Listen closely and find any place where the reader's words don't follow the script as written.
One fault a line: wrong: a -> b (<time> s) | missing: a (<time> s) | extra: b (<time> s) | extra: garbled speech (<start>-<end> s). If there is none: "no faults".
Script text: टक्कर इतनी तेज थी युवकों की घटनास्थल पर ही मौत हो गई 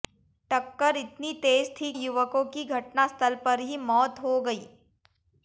no faults